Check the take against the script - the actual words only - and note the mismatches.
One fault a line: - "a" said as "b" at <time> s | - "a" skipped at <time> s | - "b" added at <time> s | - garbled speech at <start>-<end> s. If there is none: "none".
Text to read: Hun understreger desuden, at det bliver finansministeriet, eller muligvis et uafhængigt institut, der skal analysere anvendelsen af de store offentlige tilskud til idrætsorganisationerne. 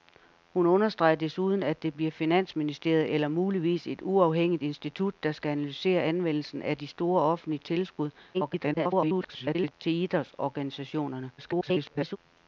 - garbled speech at 8.3-9.7 s
- garbled speech at 11.4-12.2 s